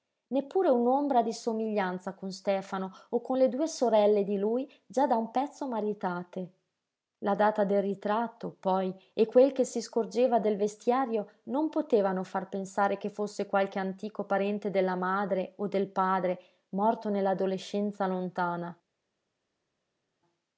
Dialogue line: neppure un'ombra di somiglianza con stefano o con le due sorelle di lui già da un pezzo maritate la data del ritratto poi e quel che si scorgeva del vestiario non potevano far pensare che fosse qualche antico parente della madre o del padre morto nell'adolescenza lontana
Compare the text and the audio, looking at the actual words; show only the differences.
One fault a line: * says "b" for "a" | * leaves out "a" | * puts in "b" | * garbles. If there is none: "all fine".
all fine